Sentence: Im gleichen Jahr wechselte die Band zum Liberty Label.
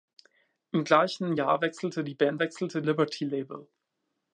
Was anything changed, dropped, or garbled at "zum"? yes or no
yes